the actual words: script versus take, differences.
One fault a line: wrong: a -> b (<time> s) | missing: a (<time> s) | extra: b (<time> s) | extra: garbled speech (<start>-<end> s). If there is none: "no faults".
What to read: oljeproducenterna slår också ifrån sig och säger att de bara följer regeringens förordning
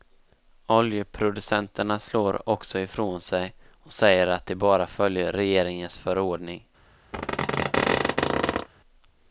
no faults